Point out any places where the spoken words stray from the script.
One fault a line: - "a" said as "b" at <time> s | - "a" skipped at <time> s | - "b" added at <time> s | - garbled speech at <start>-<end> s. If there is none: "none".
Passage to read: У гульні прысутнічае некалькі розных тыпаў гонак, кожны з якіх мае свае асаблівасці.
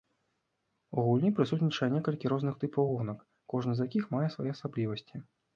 none